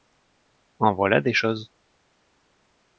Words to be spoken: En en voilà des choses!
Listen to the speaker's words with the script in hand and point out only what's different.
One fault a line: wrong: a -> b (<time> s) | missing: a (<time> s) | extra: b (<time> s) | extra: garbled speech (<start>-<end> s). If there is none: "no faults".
missing: en (0.9 s)